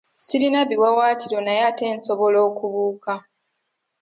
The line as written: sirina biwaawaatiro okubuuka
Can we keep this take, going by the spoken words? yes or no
no